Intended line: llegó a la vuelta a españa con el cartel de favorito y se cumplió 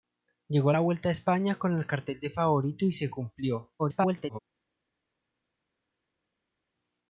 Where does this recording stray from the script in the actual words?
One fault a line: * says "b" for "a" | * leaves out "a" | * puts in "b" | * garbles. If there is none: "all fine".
* garbles